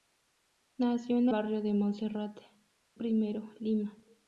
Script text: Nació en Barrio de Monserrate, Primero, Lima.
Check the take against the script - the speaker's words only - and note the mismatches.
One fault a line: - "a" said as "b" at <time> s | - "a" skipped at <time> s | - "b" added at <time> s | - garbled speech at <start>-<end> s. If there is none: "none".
none